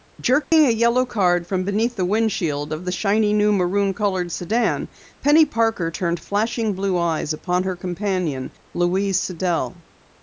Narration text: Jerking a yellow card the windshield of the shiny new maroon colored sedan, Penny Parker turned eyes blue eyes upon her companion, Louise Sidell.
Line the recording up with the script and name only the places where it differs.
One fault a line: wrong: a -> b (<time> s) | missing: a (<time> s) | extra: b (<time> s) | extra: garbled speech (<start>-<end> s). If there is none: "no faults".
extra: from beneath (1.4 s)
wrong: eyes -> flashing (6.2 s)